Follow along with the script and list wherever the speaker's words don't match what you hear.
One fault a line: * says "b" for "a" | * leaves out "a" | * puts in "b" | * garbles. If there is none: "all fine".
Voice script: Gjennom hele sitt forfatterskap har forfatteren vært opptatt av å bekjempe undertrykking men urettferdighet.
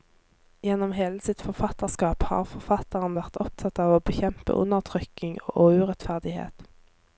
* says "og" for "men"